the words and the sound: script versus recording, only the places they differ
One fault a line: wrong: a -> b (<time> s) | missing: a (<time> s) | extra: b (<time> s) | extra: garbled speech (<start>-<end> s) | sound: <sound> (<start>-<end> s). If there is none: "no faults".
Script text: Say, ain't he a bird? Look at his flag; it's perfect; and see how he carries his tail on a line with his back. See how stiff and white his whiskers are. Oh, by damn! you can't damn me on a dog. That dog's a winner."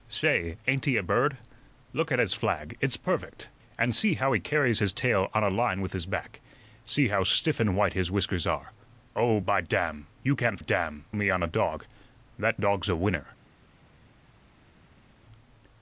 no faults